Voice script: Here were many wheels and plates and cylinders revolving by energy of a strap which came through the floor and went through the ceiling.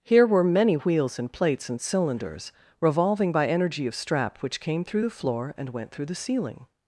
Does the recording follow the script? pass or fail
fail